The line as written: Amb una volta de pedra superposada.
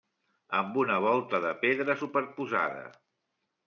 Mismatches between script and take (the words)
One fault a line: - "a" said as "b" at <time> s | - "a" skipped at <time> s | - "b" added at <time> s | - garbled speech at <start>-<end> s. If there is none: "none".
none